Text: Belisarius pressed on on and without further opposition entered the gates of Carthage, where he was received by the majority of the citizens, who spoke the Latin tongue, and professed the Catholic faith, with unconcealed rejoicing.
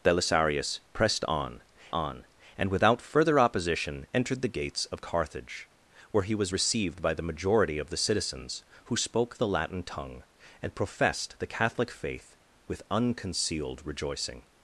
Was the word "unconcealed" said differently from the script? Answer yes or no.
no